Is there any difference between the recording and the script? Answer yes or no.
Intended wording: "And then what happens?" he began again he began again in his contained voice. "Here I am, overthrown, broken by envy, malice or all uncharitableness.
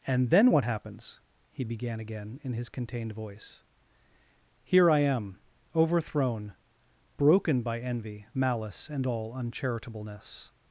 yes